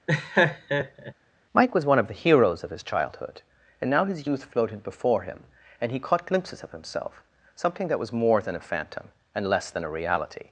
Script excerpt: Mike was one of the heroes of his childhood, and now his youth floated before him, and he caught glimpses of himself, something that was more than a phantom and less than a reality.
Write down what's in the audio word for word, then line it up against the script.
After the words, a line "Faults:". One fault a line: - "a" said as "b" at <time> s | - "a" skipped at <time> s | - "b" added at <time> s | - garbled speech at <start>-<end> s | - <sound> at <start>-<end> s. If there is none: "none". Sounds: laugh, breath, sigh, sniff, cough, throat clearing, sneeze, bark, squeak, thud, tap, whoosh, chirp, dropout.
Mike was one of the heroes of his childhood, and now his youth floated before him, and he caught glimpses of himself, something that was more than a phantom and less than a reality.
Faults:
- laugh at 0.1-1.1 s